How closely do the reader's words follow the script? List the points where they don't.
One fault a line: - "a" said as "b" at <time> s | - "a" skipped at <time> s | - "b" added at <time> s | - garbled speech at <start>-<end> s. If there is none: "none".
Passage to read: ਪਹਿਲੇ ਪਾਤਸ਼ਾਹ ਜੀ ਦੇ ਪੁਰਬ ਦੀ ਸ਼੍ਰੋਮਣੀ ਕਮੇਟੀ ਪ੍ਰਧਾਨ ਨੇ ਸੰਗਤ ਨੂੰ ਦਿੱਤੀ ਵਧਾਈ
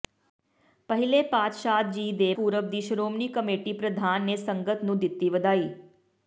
none